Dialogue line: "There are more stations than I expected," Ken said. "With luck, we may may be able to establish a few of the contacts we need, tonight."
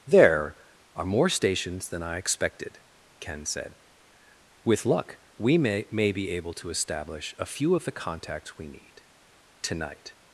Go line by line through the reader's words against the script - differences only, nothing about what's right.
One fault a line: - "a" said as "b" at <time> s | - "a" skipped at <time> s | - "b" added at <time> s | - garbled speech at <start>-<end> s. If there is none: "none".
none